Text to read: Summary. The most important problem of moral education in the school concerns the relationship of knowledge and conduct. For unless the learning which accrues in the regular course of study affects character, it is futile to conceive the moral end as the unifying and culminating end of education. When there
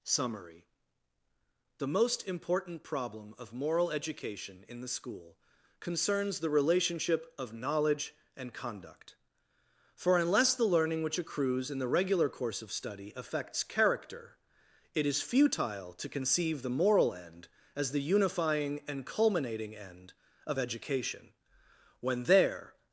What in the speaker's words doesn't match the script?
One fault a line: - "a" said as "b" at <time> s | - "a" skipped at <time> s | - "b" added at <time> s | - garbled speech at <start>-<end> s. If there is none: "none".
none